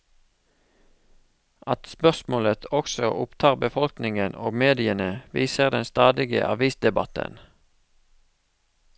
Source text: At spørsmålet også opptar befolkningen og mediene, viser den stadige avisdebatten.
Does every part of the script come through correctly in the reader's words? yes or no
yes